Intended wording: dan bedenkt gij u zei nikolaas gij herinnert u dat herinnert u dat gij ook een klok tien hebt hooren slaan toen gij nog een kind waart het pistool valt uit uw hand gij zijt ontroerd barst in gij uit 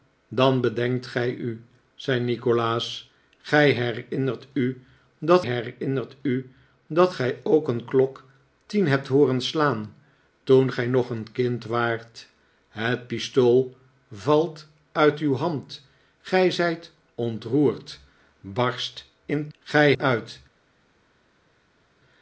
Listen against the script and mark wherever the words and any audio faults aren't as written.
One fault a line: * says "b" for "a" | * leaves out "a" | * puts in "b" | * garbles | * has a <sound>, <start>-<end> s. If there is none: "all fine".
all fine